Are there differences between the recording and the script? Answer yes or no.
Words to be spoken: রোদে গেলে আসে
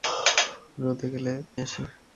no